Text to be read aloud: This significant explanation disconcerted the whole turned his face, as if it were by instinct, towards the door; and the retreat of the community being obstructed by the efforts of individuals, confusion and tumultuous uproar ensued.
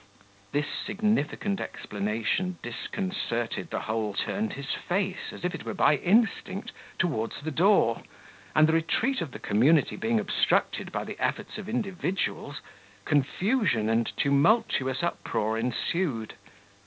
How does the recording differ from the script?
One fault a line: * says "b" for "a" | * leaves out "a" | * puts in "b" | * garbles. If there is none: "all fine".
all fine